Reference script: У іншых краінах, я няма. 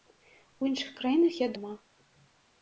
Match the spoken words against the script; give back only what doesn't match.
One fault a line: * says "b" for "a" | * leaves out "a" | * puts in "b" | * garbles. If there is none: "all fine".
all fine